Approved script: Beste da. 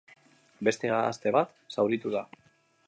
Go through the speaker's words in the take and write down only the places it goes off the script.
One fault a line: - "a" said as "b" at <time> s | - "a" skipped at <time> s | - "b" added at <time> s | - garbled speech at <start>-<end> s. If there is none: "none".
- "gazte bat zauritu" added at 0.9 s